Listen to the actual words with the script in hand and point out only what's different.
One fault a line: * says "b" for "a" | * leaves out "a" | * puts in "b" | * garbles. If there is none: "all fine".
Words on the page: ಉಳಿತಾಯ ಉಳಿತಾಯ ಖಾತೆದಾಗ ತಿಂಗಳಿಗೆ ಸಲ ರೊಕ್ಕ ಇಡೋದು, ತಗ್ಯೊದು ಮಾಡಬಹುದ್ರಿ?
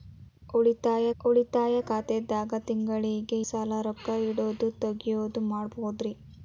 all fine